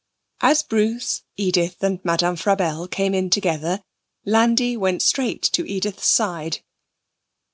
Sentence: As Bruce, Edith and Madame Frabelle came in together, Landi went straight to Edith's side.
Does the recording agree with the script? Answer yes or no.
yes